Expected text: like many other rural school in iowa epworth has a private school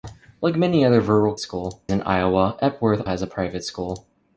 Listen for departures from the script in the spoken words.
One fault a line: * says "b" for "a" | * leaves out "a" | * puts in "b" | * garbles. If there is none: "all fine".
all fine